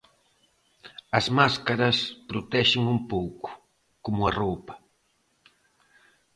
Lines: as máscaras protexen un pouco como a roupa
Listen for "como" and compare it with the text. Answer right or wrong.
right